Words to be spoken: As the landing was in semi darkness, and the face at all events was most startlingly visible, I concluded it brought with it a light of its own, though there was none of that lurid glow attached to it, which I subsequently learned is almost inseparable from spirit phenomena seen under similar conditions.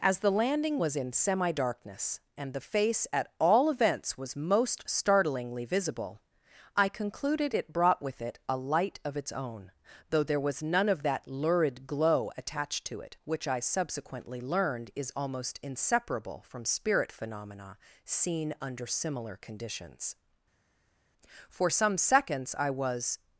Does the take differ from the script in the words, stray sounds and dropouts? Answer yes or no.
yes